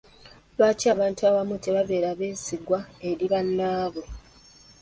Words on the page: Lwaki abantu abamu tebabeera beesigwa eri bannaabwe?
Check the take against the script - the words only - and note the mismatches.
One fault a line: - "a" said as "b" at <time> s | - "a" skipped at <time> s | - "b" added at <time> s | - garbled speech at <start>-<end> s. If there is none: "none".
none